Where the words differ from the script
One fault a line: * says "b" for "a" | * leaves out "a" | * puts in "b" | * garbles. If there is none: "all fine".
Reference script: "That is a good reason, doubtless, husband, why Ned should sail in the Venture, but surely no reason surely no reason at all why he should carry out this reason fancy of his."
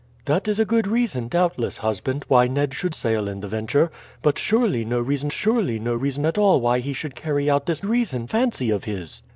all fine